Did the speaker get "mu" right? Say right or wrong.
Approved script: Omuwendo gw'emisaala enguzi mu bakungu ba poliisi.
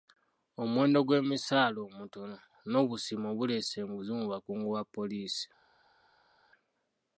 right